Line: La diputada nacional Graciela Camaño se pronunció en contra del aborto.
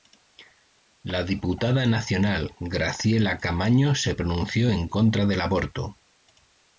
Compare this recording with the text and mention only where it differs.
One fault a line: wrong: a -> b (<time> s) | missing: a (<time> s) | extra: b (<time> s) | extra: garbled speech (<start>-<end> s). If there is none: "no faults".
no faults